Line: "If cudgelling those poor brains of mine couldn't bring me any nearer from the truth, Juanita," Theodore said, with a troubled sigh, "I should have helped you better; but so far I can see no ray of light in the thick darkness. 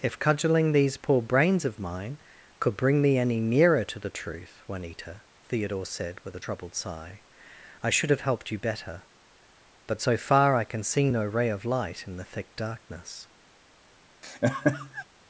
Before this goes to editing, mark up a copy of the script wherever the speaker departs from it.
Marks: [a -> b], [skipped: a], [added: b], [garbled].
"If cudgelling [those -> these] poor brains of mine [couldn't -> could] bring me any nearer [from -> to] the truth, Juanita," Theodore said, with a troubled sigh, "I should have helped you better; but so far I can see no ray of light in the thick darkness.